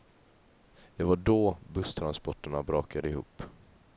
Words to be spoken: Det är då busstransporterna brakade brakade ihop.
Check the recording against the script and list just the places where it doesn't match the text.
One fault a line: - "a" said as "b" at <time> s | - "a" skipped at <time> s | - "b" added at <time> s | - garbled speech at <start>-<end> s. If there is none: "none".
- "är" said as "var" at 1.0 s
- "brakade" skipped at 3.1 s